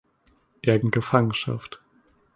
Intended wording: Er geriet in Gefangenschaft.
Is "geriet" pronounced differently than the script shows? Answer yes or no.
yes